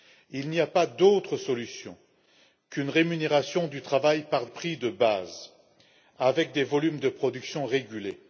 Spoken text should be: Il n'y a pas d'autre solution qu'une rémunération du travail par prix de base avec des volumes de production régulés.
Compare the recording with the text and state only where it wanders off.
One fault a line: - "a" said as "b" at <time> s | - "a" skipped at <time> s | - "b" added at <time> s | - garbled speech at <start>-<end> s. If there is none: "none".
none